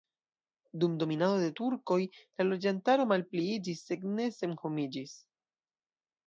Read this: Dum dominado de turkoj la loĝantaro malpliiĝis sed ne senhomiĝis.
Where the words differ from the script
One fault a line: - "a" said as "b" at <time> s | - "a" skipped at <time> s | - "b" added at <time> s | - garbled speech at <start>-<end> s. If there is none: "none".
none